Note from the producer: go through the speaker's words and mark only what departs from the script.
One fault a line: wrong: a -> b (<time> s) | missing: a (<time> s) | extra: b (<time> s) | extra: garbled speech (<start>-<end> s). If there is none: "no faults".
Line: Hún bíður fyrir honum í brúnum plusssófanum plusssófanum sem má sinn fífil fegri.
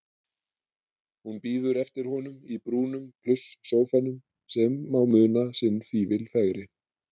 wrong: fyrir -> eftir (1.8 s)
missing: plusssófanum (4.2 s)
extra: muna (5.2 s)